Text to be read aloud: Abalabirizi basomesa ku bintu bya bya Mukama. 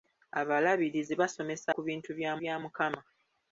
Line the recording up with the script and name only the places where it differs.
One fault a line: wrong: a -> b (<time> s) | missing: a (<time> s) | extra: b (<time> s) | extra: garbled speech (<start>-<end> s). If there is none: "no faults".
no faults